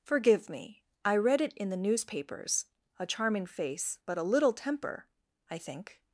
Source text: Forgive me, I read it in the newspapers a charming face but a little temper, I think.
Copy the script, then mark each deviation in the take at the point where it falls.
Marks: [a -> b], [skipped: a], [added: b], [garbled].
Forgive me, I read it in the newspapers a charming face but a little temper, I think.